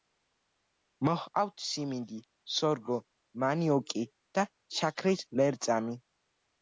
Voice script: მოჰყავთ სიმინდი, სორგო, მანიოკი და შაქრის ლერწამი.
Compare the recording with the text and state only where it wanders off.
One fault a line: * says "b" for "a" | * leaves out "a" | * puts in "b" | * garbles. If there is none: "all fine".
all fine